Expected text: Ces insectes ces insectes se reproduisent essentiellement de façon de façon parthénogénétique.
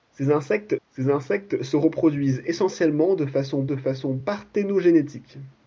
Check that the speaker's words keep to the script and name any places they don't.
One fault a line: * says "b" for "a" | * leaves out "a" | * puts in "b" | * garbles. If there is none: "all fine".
all fine